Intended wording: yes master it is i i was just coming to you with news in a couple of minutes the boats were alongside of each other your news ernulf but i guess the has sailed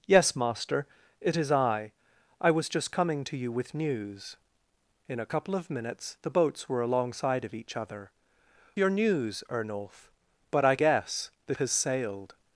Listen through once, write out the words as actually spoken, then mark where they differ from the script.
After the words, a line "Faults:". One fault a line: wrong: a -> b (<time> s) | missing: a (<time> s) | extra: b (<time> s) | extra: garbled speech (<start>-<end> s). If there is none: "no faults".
yes master it is i i was just coming to you with news in a couple of minutes the boats were alongside of each other your news ernulf but i guess the has sailed
Faults:
no faults